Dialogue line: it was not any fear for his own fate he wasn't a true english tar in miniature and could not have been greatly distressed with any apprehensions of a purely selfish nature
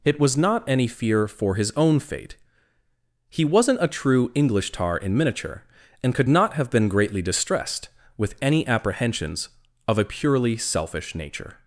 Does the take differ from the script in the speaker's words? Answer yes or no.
no